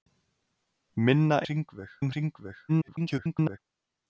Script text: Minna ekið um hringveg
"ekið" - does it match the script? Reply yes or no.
no